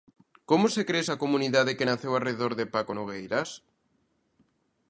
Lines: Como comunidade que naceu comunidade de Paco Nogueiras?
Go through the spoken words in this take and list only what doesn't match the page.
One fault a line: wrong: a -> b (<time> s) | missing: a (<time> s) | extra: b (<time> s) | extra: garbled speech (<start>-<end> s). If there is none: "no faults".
extra: se crea esa (0.7 s)
wrong: comunidade -> arredor (2.1 s)